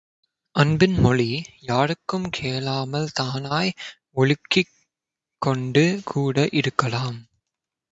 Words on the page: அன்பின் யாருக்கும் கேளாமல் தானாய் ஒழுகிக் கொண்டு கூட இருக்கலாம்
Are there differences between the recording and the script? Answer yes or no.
yes